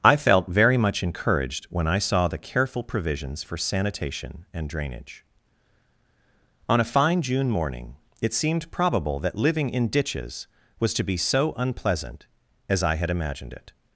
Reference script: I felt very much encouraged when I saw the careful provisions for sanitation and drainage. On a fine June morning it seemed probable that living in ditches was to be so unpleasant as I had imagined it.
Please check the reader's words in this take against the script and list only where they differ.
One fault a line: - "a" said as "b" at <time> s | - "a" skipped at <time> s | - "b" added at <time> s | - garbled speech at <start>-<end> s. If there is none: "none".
none